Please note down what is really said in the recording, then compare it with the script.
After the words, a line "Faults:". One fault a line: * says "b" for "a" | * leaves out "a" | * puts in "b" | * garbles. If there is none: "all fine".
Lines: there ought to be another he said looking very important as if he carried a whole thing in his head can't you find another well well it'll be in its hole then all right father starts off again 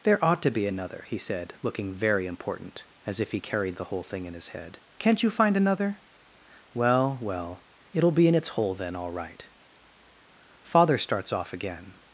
there ought to be another he said looking very important as if he carried the whole thing in his head can't you find another well well it'll be in its hole then all right father starts off again
Faults:
* says "the" for "a"